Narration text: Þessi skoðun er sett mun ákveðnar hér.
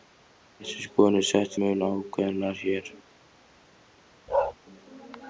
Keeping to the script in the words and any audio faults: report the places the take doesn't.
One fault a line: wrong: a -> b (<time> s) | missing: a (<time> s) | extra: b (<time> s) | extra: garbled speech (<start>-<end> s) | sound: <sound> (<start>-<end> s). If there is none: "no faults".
sound: bark (4.3-4.5 s)